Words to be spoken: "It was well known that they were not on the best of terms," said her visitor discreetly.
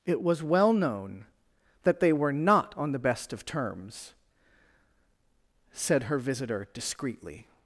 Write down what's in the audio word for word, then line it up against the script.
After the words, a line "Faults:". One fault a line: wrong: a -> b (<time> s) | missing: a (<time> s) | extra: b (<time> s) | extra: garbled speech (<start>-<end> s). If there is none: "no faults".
"It was well known that they were not on the best of terms," said her visitor discreetly.
Faults:
no faults